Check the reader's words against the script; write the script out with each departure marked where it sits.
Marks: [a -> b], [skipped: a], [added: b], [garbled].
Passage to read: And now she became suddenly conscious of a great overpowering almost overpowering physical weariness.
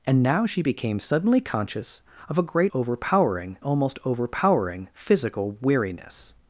And now she became suddenly conscious of a great overpowering almost overpowering physical weariness.